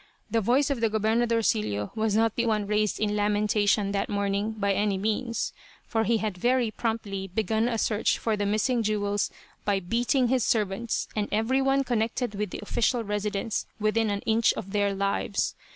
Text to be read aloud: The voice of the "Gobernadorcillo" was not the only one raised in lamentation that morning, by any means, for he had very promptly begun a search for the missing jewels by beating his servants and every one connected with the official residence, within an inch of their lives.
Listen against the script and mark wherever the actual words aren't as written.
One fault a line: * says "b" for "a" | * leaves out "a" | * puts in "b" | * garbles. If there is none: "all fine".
* leaves out "only"